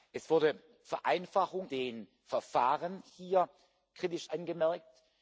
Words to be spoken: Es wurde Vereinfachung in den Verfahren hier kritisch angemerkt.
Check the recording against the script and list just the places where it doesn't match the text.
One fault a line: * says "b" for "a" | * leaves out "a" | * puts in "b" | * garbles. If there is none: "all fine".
* leaves out "in"